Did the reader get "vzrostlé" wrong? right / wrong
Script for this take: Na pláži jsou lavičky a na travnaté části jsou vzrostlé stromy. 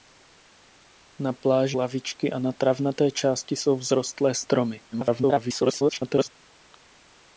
right